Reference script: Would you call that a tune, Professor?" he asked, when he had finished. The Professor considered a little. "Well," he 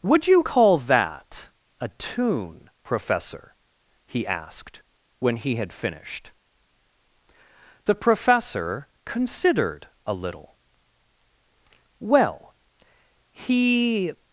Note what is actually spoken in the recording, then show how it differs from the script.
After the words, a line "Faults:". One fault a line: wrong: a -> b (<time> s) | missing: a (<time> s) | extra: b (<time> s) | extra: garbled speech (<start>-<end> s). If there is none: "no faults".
Would you call that a tune, Professor?" he asked, when he had finished. The Professor considered a little. "Well," he
Faults:
no faults